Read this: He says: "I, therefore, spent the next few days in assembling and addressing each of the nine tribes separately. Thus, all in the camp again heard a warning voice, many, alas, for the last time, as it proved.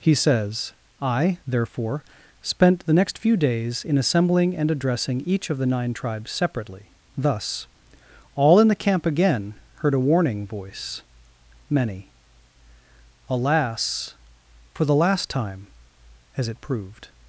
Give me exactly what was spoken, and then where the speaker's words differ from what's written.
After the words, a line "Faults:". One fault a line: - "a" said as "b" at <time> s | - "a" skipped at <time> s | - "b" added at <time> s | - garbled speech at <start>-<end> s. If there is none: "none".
He says: "I, therefore, spent the next few days in assembling and addressing each of the nine tribes separately. Thus, all in the camp again heard a warning voice, many, alas, for the last time, as it proved.
Faults:
none